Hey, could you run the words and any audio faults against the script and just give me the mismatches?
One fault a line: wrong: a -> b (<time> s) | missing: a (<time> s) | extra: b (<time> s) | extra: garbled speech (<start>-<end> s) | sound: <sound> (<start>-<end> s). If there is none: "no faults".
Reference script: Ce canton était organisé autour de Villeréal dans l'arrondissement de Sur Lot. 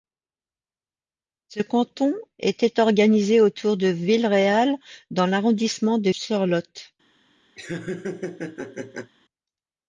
sound: laugh (7.6-9.1 s)